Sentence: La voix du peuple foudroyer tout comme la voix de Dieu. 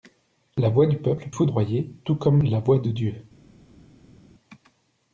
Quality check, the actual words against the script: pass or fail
pass